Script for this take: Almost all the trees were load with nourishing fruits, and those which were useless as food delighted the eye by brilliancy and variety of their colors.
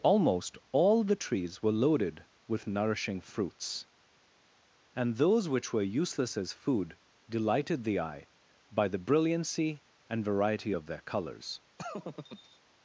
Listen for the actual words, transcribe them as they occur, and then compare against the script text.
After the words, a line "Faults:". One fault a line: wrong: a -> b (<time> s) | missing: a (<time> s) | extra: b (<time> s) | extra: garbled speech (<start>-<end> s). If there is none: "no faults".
Almost all the trees were loaded with nourishing fruits, and those which were useless as food delighted the eye by the brilliancy and variety of their colors.
Faults:
wrong: load -> loaded (1.7 s)
extra: the (8.9 s)